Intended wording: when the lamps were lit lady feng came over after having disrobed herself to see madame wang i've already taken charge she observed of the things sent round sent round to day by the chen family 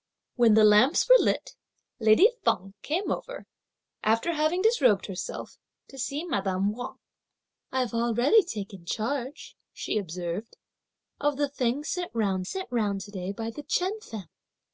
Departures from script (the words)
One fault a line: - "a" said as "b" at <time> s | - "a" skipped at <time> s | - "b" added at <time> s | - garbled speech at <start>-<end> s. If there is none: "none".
none